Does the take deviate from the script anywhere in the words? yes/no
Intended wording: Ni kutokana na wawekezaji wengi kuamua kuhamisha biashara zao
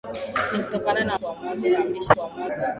yes